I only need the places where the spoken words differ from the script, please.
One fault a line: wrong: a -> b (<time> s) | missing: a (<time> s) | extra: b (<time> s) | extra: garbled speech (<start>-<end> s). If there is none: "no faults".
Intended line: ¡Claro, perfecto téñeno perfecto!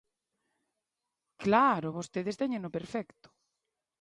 wrong: perfecto -> vostedes (2.0 s)